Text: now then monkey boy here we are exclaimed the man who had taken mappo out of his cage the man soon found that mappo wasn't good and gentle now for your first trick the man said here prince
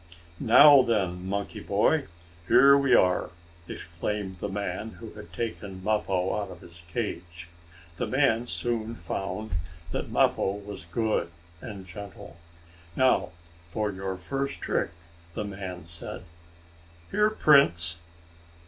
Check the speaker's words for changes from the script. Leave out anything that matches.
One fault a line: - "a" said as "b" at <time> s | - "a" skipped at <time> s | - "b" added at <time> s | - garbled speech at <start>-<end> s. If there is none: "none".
- "wasn't" said as "was" at 10.5 s